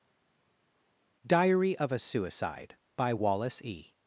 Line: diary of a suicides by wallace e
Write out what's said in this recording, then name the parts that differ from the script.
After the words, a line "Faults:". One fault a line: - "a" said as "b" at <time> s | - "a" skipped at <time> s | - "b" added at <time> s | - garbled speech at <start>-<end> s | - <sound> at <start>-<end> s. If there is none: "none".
diary of a suicide by wallace e
Faults:
- "suicides" said as "suicide" at 2.0 s